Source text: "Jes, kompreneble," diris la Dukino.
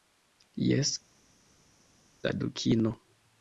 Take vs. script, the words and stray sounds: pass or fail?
fail